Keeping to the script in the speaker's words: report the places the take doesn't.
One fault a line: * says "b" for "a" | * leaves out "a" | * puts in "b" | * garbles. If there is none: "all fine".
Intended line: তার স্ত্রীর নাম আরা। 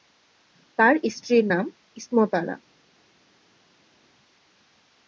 * puts in "ইসমত"